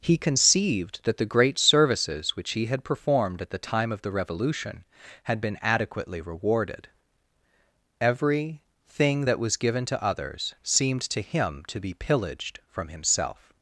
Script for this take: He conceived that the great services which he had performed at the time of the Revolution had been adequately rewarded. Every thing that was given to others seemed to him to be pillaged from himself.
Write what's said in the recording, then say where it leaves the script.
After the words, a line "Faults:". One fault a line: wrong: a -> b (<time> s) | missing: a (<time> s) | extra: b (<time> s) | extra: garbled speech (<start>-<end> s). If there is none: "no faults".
He conceived that the great services which he had performed at the time of the Revolution had been adequately rewarded. Every thing that was given to others seemed to him to be pillaged from himself.
Faults:
no faults